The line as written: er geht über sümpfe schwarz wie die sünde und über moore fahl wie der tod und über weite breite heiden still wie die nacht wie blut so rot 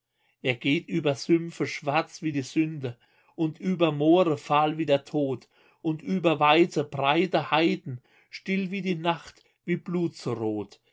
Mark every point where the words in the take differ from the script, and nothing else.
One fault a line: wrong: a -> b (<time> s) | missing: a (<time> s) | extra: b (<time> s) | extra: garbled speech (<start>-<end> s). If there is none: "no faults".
no faults